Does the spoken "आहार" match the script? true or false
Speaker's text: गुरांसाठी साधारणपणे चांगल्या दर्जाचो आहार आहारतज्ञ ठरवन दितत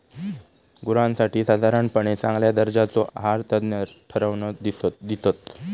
false